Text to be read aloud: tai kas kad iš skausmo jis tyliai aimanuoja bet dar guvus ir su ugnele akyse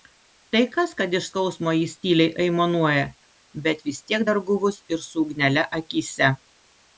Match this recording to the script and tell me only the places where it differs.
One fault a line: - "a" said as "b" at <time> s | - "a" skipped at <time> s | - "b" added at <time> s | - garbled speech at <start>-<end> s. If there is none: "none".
- "vis tiek" added at 3.9 s